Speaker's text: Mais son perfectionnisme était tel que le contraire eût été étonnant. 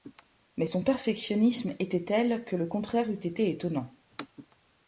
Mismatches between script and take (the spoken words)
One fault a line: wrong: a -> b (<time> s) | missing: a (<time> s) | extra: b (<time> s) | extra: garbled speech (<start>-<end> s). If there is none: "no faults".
no faults